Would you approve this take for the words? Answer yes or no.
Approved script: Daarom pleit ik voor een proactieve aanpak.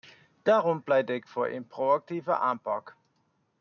yes